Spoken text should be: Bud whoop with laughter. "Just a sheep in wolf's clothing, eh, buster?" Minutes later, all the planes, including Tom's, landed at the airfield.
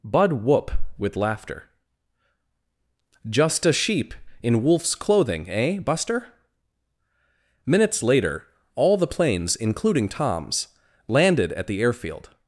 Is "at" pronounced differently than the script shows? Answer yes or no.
no